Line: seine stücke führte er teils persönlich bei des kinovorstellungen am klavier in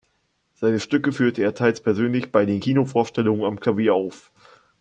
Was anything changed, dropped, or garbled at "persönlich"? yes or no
no